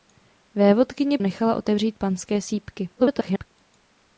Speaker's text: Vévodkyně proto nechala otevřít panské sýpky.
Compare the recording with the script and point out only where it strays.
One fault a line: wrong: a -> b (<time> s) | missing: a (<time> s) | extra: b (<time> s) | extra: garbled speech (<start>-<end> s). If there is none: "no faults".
missing: proto (1.2 s)
extra: garbled speech (3.0-3.5 s)